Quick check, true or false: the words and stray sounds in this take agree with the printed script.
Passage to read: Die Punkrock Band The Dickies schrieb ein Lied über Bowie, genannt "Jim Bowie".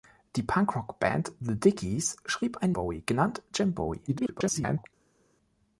false